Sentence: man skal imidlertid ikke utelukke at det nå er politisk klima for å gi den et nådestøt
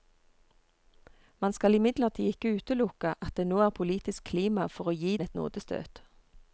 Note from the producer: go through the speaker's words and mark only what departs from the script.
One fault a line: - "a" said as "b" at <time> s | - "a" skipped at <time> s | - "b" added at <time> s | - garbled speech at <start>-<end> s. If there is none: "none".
- "den" skipped at 5.2 s